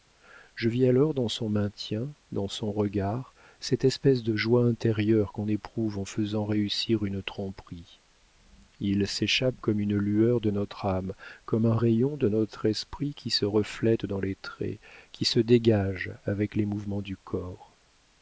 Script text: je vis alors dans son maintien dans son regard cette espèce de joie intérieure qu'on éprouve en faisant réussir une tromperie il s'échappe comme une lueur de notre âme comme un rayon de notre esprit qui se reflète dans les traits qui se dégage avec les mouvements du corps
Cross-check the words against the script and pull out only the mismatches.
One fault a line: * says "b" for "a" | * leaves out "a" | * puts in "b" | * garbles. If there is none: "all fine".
all fine